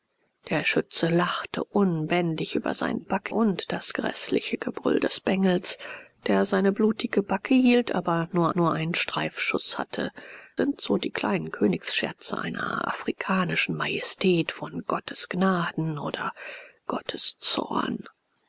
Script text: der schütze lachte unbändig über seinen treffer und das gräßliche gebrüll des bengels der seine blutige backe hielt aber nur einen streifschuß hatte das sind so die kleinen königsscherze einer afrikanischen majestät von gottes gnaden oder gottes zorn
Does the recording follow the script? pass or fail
fail